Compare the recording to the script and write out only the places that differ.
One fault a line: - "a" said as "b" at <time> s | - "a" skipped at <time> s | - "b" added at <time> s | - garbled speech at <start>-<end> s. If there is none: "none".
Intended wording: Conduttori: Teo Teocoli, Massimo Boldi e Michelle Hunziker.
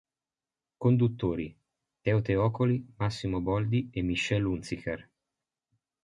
none